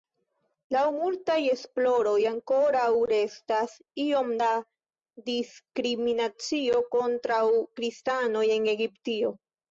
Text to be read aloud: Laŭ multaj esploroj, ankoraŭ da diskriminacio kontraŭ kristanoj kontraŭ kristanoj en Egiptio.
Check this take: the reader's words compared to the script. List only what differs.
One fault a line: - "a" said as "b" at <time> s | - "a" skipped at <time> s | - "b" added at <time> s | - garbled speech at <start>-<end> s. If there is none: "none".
- "restas iom" added at 3.1 s
- "kontraŭ kristanoj" skipped at 8.5 s